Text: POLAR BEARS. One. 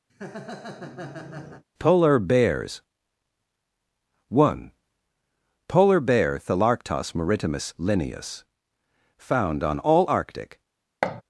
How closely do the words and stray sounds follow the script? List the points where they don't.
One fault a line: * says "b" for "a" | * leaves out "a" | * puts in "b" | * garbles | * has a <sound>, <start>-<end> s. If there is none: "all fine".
* has a laugh, 0.1-1.6 s
* puts in "POLAR BEAR Thalarctos maritimus Linnaeus Found on all Arctic"
* has a thud, 11.0-11.2 s